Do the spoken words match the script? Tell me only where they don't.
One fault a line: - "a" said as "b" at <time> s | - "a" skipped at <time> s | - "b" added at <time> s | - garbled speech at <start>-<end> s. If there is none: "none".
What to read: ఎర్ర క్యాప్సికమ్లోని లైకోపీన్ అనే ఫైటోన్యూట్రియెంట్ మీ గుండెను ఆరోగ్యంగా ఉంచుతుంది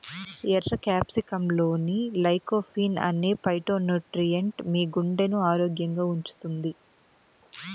none